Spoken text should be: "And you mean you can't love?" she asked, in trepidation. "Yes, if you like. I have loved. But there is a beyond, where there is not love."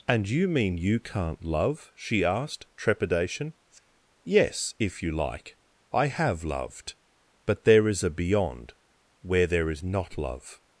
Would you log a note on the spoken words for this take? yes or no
yes